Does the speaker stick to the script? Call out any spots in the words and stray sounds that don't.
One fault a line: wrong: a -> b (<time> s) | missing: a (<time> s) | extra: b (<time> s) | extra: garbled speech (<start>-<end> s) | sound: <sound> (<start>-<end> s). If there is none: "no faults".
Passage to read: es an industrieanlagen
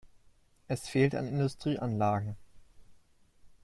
extra: fehlt (0.9 s)